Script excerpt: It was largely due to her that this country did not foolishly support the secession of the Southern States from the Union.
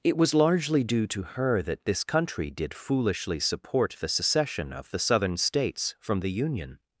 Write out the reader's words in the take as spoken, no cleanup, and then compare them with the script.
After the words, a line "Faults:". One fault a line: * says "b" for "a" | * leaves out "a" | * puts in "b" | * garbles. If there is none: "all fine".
It was largely due to her that this country did foolishly support the secession of the Southern States from the Union.
Faults:
* leaves out "not"